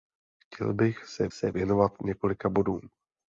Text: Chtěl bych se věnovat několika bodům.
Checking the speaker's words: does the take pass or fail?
fail